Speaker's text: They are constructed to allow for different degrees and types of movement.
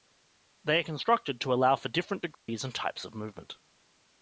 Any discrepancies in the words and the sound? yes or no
yes